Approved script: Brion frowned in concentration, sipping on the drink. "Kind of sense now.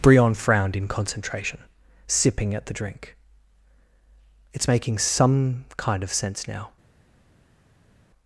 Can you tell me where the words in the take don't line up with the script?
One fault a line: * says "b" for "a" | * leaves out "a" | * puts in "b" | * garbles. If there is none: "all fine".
* says "at" for "on"
* puts in "It's making some"